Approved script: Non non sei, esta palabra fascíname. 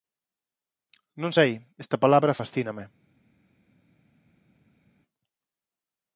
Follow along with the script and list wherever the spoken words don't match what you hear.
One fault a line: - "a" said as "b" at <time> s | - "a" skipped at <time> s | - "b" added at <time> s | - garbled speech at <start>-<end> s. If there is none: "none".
- "non" skipped at 1.3 s